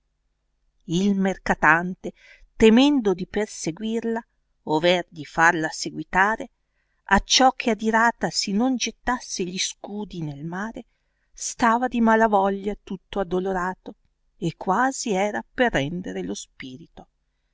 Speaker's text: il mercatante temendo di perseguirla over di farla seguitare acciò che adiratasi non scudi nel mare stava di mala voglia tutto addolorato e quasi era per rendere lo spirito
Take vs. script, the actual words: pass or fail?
fail